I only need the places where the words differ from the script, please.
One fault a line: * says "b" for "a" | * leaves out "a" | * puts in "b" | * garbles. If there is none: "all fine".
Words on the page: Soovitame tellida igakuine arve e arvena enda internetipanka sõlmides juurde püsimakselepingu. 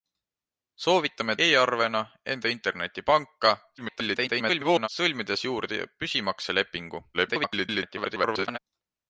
* leaves out "tellida igakuine arve"
* garbles
* garbles